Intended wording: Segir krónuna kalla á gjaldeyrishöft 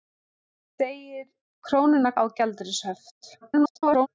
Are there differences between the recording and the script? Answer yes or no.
yes